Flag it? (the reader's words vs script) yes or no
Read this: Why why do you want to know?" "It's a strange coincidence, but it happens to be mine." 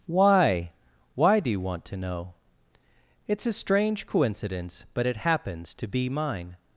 no